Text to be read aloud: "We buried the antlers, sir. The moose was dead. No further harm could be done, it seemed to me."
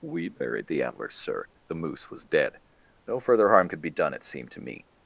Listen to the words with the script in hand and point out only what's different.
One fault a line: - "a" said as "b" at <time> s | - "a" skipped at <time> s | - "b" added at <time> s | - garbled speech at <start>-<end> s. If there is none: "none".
none